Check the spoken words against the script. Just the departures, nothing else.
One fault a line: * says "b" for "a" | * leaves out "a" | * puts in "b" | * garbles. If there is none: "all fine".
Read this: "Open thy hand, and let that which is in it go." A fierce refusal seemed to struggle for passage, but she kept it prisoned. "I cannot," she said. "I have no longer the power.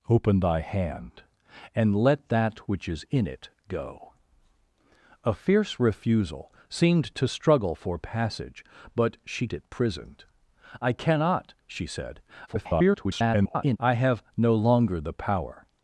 * leaves out "kept"
* garbles